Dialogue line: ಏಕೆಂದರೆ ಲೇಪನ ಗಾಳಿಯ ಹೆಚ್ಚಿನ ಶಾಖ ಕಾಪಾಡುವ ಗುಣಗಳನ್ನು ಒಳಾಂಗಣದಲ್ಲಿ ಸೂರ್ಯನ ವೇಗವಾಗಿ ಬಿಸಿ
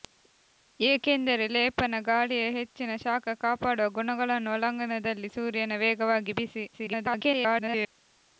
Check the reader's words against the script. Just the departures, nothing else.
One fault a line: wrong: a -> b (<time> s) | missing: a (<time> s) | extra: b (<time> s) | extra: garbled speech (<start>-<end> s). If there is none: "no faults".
extra: garbled speech (6.7-7.9 s)